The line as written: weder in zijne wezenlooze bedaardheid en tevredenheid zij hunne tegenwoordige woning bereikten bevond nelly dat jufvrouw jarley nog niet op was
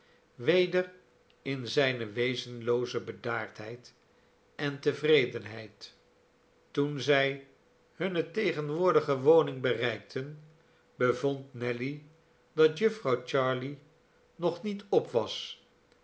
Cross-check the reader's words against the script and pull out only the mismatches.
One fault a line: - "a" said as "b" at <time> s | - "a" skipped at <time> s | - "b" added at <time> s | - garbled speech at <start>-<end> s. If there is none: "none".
- "toen" added at 6.7 s